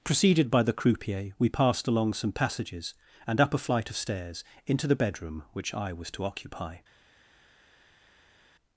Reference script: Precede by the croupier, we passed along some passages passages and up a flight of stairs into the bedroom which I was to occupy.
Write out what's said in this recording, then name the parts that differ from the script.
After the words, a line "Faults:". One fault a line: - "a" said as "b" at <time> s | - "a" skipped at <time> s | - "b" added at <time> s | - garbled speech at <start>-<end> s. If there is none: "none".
Preceded by the croupier, we passed along some passages and up a flight of stairs into the bedroom which I was to occupy.
Faults:
- "Precede" said as "Preceded" at 0.0 s
- "passages" skipped at 2.9 s